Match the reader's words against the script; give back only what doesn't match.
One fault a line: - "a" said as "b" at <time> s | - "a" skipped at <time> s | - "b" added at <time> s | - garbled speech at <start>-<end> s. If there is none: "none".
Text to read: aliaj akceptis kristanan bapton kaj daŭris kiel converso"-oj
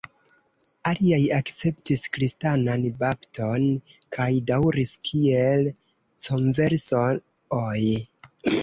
none